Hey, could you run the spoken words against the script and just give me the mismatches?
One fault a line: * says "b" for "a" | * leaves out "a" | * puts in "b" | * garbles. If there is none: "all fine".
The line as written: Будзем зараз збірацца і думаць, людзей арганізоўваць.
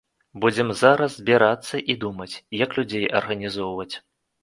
* puts in "як"